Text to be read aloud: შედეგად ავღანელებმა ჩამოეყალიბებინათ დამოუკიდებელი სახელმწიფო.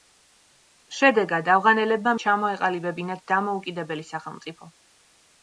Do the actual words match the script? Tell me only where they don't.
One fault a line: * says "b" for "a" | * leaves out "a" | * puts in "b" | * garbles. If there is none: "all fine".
all fine